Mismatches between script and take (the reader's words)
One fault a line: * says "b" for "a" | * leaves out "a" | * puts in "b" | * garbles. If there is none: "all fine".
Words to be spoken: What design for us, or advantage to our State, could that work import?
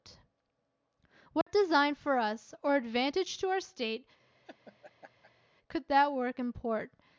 all fine